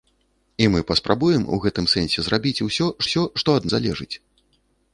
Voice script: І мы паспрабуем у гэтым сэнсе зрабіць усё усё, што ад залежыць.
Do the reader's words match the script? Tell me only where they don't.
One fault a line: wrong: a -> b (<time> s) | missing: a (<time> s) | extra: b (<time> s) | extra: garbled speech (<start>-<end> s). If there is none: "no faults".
no faults